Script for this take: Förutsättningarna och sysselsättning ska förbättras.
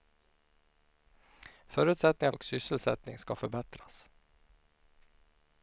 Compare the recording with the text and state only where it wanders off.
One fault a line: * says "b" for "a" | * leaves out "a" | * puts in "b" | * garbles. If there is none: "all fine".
all fine